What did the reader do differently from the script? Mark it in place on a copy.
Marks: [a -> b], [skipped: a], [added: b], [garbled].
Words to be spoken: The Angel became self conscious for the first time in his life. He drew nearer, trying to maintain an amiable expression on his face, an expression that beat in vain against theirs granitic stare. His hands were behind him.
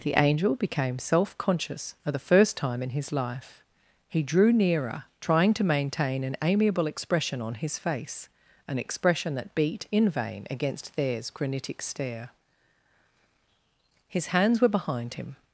The Angel became self conscious for the first time in his life. He drew nearer, trying to maintain an amiable expression on his face, an expression that beat in vain against theirs granitic stare. His hands were behind him.